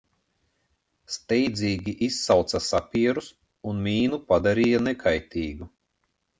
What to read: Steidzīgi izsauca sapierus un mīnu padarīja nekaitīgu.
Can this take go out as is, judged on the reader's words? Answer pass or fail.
pass